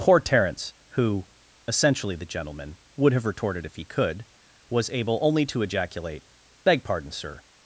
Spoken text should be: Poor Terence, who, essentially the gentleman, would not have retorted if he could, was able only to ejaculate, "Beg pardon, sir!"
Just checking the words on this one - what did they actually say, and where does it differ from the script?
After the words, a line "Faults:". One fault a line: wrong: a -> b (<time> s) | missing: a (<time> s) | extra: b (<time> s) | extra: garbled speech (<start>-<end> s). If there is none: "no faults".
Poor Terence, who, essentially the gentleman, would have retorted if he could, was able only to ejaculate, "Beg pardon, sir!"
Faults:
missing: not (3.1 s)